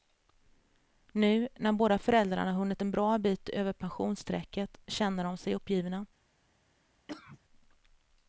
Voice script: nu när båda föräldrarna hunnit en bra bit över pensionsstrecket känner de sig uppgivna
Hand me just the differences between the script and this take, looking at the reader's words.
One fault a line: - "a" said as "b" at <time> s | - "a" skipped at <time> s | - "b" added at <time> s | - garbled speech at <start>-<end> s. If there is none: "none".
none